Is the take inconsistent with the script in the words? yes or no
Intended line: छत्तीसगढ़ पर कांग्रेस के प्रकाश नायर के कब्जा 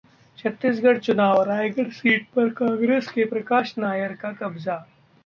yes